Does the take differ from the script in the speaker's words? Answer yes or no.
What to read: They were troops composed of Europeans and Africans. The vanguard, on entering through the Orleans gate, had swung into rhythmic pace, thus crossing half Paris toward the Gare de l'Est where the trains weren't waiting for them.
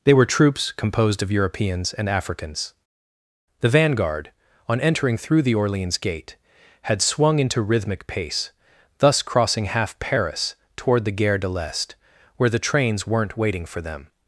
no